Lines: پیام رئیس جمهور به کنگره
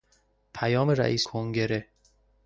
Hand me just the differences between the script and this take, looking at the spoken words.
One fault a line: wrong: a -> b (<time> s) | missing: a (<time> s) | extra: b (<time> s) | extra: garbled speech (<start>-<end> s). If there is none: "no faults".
missing: جمهور به (1.2 s)